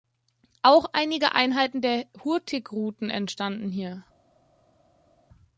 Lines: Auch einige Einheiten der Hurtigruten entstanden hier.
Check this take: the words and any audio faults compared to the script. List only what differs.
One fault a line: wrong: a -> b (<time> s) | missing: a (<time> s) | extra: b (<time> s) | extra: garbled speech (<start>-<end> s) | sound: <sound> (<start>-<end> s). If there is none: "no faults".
no faults